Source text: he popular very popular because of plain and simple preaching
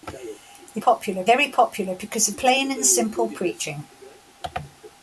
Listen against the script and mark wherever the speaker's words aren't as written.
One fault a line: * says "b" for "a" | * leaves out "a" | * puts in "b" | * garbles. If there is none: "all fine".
all fine